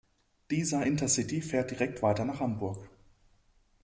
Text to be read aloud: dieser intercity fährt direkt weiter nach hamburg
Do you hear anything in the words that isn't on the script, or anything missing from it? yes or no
no